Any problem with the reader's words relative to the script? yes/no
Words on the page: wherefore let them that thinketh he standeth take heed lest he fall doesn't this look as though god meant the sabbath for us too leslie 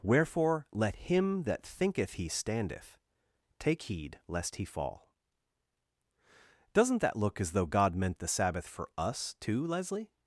yes